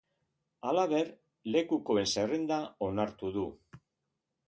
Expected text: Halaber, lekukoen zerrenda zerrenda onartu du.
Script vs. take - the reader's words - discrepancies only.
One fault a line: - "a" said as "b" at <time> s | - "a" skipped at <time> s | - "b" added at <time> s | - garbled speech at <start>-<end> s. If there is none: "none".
- "zerrenda" skipped at 2.6 s